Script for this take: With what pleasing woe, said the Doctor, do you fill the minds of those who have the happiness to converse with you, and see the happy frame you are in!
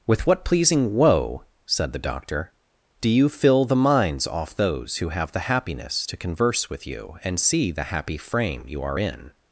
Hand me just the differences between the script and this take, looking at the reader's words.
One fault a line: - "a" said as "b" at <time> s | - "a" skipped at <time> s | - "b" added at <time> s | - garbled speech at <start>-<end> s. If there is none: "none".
- "of" said as "off" at 4.3 s